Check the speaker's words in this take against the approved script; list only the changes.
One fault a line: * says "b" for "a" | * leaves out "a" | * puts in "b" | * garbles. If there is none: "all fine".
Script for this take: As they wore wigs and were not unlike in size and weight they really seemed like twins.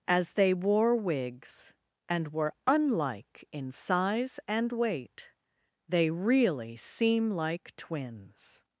* leaves out "not"
* says "seem" for "seemed"